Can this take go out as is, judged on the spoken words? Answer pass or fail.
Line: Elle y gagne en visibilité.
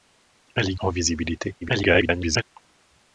fail